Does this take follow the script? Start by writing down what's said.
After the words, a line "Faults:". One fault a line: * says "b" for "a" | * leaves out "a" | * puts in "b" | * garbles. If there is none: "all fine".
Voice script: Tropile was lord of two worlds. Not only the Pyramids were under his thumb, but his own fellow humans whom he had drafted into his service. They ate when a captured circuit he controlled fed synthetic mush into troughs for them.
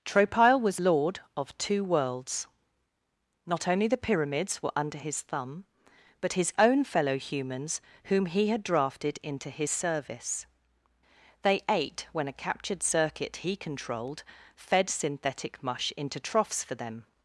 Tropile was lord of two worlds. Not only the Pyramids were under his thumb, but his own fellow humans whom he had drafted into his service. They ate when a captured circuit he controlled fed synthetic mush into troughs for them.
Faults:
all fine